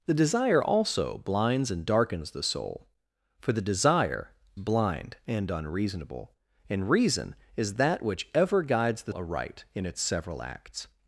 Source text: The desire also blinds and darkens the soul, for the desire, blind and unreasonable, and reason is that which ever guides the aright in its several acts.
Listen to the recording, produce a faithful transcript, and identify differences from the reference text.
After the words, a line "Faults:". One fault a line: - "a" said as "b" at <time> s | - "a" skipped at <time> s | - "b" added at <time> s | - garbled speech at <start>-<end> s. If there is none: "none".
The desire also blinds and darkens the soul, for the desire, blind and unreasonable, and reason is that which ever guides the aright in its several acts.
Faults:
none